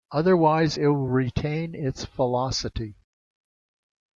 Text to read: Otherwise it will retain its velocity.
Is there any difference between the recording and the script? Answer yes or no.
no